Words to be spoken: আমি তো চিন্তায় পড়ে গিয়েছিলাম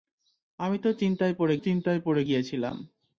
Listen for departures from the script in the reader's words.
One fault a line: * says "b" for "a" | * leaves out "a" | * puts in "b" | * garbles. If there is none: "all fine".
* puts in "চিন্তায় পড়ে"